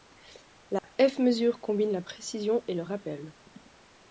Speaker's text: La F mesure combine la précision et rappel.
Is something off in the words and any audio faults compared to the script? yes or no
yes